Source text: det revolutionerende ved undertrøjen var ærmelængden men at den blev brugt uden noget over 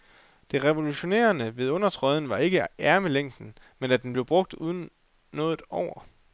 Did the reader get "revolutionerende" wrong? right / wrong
right